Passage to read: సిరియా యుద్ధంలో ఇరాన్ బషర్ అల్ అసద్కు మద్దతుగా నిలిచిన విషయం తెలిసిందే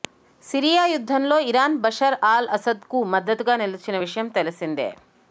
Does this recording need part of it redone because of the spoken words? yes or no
no